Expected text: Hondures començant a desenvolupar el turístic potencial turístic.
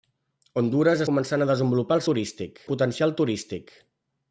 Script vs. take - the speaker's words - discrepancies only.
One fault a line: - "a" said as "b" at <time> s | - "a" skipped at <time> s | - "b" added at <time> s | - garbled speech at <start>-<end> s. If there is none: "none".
none